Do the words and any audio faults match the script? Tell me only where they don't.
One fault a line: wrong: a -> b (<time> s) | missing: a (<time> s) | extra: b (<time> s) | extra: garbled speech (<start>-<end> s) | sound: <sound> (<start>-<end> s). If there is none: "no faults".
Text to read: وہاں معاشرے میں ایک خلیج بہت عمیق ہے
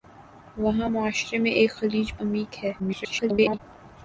missing: بہت (2.1 s)
extra: garbled speech (2.8-3.6 s)